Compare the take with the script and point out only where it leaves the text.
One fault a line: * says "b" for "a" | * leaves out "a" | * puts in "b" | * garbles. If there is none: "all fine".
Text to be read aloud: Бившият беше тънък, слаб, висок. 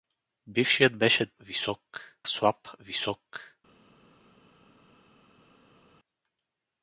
* says "висок" for "тънък"